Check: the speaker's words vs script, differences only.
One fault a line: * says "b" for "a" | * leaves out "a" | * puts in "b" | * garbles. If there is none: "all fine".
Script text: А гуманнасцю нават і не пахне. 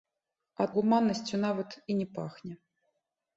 all fine